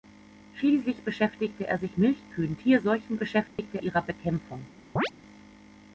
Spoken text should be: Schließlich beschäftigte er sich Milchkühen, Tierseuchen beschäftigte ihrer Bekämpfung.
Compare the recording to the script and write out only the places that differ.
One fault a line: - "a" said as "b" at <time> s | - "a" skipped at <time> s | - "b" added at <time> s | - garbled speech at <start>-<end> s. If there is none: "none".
none